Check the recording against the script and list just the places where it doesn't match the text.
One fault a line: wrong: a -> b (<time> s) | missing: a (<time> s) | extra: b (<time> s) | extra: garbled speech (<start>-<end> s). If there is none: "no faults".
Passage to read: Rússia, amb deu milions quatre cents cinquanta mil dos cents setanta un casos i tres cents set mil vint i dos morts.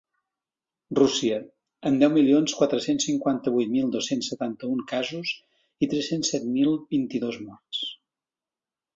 extra: vuit (3.6 s)